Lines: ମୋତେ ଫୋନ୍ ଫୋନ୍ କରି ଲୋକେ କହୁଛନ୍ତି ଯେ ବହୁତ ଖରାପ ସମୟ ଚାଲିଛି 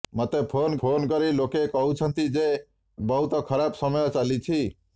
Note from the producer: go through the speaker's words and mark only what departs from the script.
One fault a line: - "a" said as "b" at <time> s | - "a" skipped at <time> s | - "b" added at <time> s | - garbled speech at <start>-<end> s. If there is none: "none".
none